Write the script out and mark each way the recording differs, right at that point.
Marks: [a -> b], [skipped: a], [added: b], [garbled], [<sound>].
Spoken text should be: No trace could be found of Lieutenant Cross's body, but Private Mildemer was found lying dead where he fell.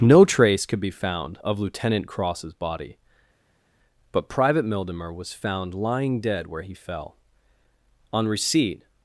No trace could be found of Lieutenant Cross's body, but Private Mildemer was found lying dead where he fell. [added: On receipt]